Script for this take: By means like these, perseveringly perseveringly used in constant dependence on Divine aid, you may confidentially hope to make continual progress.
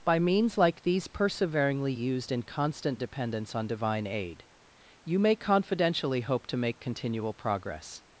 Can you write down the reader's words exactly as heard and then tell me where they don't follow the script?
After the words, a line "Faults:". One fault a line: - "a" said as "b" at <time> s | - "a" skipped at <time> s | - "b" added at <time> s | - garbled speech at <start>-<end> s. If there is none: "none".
By means like these, perseveringly used in constant dependence on Divine aid, you may confidentially hope to make continual progress.
Faults:
- "perseveringly" skipped at 1.9 s